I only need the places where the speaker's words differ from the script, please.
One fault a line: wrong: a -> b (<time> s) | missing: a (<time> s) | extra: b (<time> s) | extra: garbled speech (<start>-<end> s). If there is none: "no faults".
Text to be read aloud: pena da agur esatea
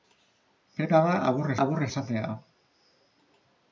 extra: agur (1.6 s)